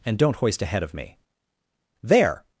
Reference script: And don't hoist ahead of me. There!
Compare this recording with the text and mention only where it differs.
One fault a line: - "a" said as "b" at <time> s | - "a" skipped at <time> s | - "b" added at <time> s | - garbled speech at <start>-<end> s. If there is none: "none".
none